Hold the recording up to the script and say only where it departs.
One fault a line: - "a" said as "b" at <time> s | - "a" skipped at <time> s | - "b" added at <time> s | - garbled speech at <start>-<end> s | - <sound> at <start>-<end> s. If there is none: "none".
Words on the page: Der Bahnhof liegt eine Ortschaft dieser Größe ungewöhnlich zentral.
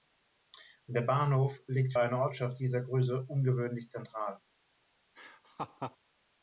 - laugh at 5.1-6.0 s